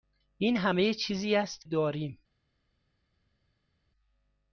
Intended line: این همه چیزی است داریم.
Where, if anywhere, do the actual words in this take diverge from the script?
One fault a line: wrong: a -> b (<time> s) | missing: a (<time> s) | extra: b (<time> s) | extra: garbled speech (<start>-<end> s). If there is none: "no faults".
no faults